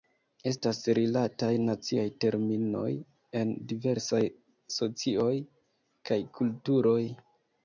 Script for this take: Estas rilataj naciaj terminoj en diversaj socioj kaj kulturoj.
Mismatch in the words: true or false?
false